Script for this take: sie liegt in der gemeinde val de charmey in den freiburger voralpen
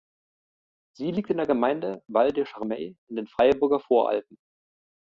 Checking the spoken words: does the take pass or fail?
pass